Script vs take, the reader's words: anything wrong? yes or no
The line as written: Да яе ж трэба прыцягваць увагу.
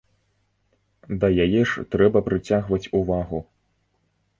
no